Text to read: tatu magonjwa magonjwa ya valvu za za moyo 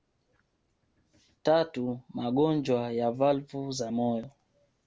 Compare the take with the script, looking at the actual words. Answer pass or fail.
fail